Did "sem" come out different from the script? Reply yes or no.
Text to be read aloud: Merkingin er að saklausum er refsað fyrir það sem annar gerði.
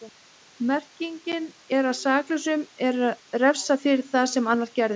no